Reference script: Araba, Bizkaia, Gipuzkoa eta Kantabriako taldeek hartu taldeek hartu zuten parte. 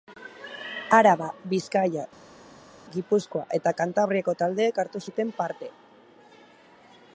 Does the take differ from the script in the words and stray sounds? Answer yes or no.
yes